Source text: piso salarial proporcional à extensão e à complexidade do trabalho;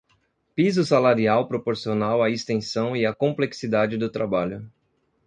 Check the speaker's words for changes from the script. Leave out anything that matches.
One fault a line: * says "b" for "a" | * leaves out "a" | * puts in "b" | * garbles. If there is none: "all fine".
all fine